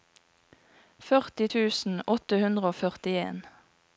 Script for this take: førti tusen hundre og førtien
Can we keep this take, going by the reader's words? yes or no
no